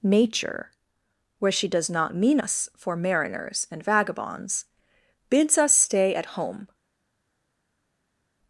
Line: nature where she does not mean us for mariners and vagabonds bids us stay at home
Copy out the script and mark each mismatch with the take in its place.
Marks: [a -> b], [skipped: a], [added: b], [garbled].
nature where she does not mean us for mariners and vagabonds bids us stay at home